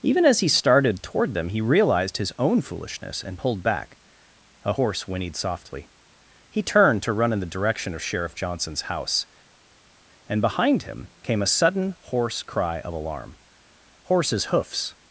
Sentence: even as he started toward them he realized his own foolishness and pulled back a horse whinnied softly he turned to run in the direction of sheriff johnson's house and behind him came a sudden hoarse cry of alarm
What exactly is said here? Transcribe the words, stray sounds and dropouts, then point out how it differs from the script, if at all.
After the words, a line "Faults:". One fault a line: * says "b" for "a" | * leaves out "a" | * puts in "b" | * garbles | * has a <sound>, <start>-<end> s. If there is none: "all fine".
even as he started toward them he realized his own foolishness and pulled back a horse whinnied softly he turned to run in the direction of sheriff johnson's house and behind him came a sudden hoarse cry of alarm horses hoofs
Faults:
* puts in "horses hoofs"